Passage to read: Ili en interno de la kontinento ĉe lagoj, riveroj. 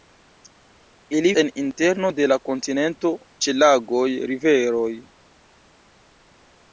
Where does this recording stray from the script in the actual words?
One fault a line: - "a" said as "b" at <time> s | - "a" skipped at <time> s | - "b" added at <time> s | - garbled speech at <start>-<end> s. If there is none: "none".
none